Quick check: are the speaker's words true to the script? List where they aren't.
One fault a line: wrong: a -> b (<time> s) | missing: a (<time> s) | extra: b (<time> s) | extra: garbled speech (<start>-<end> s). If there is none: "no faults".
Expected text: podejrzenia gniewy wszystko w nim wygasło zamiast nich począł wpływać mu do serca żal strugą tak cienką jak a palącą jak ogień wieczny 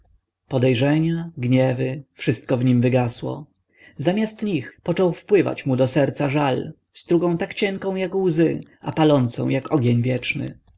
extra: łzy (8.1 s)